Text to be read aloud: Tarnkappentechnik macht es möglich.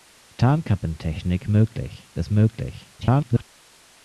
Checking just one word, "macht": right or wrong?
wrong